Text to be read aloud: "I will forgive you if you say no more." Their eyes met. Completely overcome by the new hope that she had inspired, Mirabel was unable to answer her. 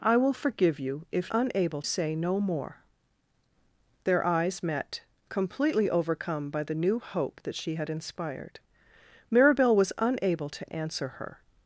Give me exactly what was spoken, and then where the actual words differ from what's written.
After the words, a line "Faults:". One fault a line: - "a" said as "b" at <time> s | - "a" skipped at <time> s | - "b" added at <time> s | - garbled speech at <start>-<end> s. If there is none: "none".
"I will forgive you if unable say no more." Their eyes met. Completely overcome by the new hope that she had inspired, Mirabel was unable to answer her.
Faults:
- "you" said as "unable" at 1.3 s